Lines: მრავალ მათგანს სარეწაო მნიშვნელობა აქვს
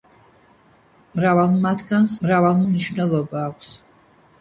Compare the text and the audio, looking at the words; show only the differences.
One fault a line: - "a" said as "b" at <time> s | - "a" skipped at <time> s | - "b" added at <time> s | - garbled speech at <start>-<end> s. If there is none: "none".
- "სარეწაო" said as "მრავალ" at 2.3 s